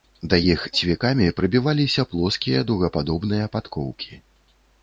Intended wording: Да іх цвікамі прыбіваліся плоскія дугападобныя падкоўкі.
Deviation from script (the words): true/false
false